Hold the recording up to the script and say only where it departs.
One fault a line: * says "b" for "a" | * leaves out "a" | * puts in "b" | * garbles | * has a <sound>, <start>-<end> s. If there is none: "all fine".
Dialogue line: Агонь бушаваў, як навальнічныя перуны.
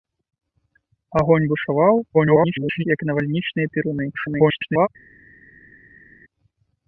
* garbles
* garbles